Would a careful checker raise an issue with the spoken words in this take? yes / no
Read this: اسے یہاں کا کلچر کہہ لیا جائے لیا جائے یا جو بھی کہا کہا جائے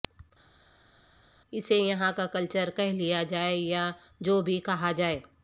yes